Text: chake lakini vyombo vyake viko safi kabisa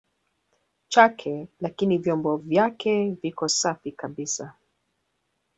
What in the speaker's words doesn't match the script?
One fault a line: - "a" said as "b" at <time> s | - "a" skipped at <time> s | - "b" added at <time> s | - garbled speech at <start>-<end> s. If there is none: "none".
none